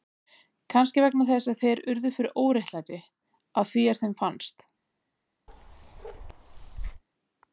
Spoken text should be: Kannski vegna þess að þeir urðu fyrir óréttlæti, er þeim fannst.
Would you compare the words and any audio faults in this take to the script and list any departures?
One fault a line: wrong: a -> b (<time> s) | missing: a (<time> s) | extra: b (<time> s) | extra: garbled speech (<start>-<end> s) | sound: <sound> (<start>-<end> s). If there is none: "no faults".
extra: að því (3.6 s)
sound: bark (5.5-7.0 s)